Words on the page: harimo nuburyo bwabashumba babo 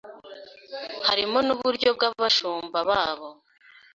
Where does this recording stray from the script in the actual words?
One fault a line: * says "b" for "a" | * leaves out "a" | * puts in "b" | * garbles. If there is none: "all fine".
all fine